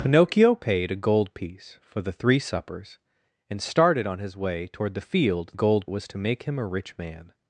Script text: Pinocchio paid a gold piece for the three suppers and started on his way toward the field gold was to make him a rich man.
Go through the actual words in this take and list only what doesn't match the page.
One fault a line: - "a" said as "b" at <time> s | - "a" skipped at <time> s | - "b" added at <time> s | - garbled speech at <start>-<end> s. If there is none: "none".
none